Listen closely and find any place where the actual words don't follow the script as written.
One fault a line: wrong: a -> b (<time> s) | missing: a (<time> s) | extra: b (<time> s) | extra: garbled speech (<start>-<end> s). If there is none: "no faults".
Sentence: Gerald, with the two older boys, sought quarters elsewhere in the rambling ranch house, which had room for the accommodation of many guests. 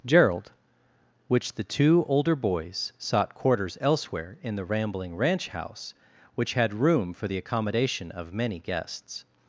wrong: with -> which (1.3 s)